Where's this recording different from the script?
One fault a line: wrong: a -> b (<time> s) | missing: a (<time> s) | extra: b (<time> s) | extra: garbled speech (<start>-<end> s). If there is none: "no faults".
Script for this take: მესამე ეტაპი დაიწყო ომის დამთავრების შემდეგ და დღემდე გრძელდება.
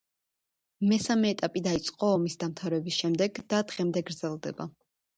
no faults